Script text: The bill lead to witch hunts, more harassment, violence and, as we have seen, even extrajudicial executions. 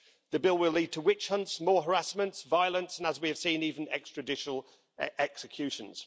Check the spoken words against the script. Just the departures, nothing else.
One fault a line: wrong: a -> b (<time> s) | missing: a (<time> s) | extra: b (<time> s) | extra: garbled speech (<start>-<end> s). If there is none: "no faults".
extra: will (0.6 s)